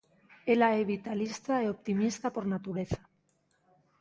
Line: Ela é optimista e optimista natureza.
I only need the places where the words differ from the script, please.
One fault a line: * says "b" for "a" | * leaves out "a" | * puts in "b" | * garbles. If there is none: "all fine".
* says "vitalista" for "optimista"
* puts in "por"